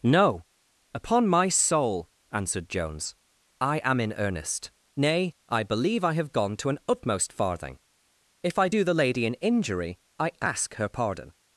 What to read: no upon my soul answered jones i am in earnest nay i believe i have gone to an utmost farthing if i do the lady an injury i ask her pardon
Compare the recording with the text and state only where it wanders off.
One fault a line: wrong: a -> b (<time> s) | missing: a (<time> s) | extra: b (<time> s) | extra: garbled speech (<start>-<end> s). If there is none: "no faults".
no faults